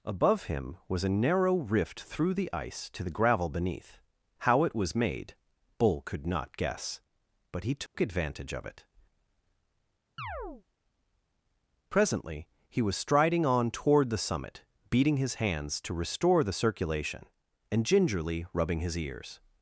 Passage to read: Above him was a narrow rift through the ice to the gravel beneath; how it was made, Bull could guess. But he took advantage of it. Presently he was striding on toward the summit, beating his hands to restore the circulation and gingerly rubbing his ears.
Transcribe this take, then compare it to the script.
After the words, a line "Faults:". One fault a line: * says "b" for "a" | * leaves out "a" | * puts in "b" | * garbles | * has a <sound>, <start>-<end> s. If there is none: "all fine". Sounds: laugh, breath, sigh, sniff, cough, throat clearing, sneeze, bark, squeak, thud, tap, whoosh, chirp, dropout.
Above him was a narrow rift through the ice to the gravel beneath; how it was made, Bull could not guess. But he took advantage of it. Presently he was striding on toward the summit, beating his hands to restore the circulation and gingerly rubbing his ears.
Faults:
* puts in "not"
* has a dropout, 7.9-7.9 s
* has a chirp, 10.2-10.6 s